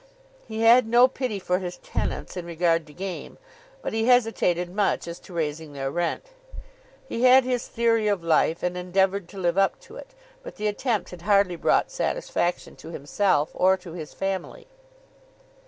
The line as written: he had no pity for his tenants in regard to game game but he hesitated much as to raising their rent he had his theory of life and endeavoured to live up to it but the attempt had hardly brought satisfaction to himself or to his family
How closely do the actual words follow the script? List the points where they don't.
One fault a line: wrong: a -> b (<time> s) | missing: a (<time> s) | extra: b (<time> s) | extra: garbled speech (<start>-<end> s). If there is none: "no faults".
missing: game (3.4 s)